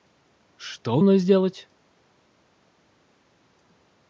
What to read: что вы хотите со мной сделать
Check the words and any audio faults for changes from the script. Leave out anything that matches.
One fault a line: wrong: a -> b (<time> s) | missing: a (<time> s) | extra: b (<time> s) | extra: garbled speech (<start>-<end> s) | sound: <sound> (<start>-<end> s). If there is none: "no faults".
missing: вы хотите со (1.0 s)